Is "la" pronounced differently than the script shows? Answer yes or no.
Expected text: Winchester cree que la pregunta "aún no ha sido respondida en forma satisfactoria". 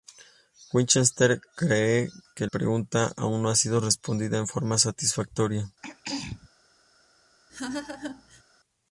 yes